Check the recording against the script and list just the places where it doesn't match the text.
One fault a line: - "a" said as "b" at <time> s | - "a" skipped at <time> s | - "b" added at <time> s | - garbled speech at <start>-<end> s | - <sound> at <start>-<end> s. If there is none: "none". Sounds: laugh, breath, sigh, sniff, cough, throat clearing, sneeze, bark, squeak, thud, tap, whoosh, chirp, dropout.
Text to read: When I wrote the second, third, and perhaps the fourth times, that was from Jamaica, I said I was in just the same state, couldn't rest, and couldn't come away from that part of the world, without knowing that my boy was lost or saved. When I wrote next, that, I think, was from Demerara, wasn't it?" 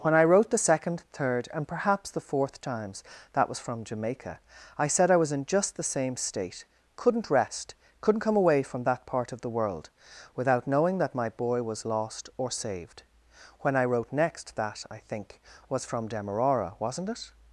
- "and" skipped at 7.7 s